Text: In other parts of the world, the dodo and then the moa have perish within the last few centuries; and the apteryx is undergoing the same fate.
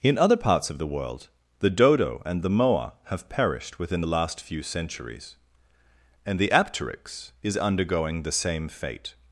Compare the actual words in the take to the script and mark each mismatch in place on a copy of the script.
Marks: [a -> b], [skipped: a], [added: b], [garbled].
In other parts of the world, the dodo and [skipped: then] the moa have [perish -> perished] within the last few centuries; and the apteryx is undergoing the same fate.